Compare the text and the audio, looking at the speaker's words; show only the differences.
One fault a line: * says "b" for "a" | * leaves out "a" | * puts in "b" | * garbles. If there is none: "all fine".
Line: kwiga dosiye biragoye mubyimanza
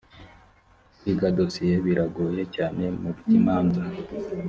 * puts in "cyane"